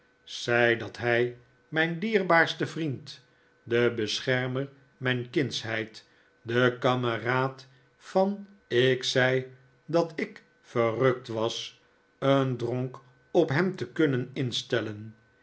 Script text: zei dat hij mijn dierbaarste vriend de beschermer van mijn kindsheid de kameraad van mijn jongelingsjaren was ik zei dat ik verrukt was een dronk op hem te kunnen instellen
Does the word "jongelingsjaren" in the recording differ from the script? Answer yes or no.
yes